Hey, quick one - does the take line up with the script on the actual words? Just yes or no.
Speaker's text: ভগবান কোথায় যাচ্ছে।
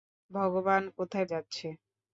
yes